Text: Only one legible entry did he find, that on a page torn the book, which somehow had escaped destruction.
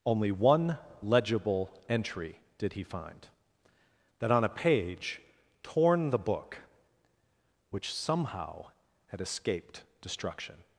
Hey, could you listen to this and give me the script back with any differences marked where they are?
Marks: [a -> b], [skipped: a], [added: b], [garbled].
Only one legible entry did he find, that on a page torn the book, which somehow had escaped destruction.